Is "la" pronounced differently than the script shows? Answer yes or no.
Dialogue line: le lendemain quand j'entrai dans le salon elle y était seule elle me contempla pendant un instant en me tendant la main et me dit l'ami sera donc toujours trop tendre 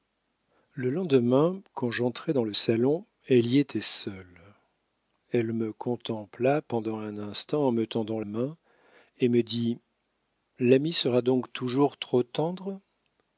yes